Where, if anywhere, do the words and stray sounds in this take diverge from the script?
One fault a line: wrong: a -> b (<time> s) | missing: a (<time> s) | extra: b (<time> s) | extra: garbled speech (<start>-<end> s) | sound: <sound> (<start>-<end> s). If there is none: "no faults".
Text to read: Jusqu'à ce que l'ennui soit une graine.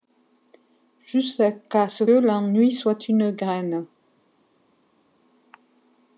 missing: que (2.0 s)